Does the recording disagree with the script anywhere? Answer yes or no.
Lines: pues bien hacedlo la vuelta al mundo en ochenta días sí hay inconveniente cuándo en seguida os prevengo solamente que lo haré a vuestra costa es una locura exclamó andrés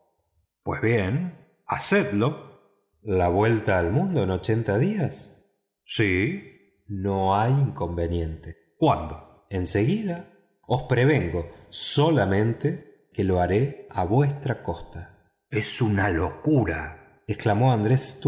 yes